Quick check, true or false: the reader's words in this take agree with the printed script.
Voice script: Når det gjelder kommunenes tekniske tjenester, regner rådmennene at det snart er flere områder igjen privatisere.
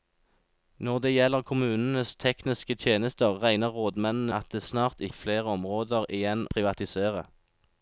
true